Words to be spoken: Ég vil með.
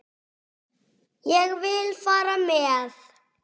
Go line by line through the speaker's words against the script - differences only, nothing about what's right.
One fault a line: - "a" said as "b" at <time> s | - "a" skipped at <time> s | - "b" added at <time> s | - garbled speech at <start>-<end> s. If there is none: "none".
- "fara" added at 2.1 s